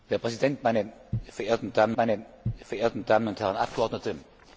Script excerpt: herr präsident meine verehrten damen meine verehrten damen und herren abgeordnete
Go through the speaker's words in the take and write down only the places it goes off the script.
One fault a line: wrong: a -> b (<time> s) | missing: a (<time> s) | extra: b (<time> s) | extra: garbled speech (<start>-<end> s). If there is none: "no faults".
no faults